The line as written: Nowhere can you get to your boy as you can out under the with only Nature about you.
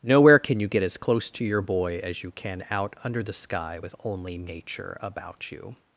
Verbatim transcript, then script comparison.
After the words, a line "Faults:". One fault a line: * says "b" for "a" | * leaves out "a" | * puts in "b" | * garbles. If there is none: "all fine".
Nowhere can you get as close to your boy as you can out under the sky with only Nature about you.
Faults:
* puts in "as close"
* puts in "sky"